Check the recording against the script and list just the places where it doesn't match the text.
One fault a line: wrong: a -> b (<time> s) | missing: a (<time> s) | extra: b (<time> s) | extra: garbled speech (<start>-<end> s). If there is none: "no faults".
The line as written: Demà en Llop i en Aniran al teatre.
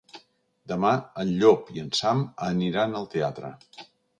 extra: Sam (2.0 s)